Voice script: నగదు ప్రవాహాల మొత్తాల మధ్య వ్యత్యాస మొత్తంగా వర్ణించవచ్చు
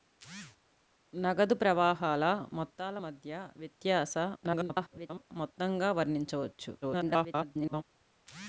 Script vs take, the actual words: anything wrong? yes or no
yes